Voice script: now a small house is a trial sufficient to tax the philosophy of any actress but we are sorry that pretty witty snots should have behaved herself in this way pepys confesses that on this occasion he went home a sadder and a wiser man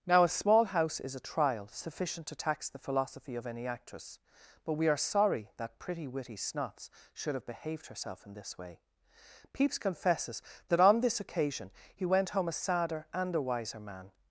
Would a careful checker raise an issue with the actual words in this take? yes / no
no